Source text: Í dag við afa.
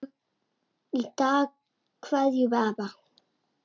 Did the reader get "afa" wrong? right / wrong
right